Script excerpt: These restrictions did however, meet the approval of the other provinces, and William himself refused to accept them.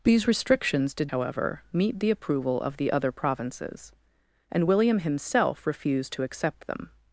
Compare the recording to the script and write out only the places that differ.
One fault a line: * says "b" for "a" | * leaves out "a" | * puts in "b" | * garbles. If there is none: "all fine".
all fine